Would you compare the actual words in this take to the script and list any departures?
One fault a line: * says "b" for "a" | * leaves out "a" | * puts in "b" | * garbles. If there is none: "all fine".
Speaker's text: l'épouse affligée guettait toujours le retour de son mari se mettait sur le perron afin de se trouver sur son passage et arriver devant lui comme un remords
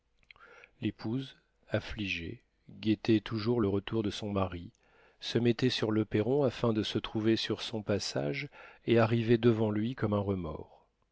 all fine